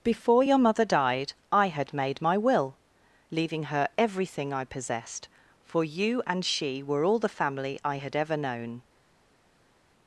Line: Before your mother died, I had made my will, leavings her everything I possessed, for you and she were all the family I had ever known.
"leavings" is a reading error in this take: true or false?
true